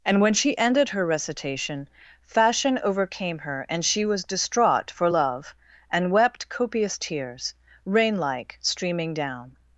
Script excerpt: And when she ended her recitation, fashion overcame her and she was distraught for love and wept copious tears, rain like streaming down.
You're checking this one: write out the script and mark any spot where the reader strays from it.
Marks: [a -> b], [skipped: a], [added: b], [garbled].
And when she ended her recitation, fashion overcame her and she was distraught for love and wept copious tears, rain like streaming down.